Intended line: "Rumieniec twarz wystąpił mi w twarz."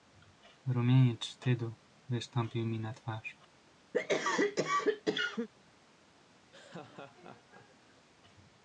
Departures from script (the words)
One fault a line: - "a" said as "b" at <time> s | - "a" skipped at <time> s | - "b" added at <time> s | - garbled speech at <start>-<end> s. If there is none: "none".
- "twarz" said as "wstydu" at 1.2 s
- "w" said as "na" at 2.8 s